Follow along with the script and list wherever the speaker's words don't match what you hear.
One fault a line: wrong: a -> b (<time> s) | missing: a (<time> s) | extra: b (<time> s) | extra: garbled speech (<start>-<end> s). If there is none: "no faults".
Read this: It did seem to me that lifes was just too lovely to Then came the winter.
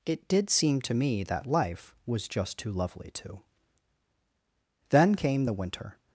wrong: lifes -> life (1.4 s)